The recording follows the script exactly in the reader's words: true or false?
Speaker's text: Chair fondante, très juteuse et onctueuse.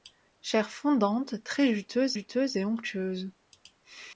false